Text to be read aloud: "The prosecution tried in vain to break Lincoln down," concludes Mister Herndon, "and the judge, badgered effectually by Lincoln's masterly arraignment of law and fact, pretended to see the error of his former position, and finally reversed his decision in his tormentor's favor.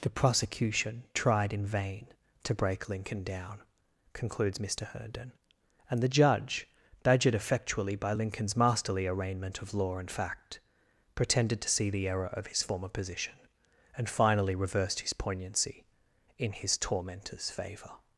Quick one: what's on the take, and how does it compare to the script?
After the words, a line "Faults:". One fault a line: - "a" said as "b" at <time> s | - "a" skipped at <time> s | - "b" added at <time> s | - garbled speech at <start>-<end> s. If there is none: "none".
"The prosecution tried in vain to break Lincoln down," concludes Mister Herndon, "and the judge, badgered effectually by Lincoln's masterly arraignment of law and fact, pretended to see the error of his former position, and finally reversed his poignancy in his tormentor's favor.
Faults:
- "decision" said as "poignancy" at 15.1 s